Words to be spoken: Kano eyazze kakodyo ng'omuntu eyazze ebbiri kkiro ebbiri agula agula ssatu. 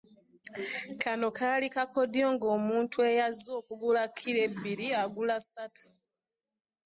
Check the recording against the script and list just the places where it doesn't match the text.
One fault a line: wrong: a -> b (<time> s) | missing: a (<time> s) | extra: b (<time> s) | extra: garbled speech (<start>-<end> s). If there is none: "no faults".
wrong: eyazze -> kaali (1.4 s)
wrong: ebbiri -> okugula (3.6 s)
missing: agula (5.4 s)